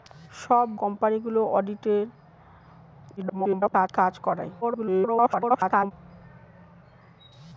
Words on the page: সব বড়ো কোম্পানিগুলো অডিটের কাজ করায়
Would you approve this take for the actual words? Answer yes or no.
no